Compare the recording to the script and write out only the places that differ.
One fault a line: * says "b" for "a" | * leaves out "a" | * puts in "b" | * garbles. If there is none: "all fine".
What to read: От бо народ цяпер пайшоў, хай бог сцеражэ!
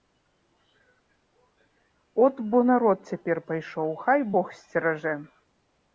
all fine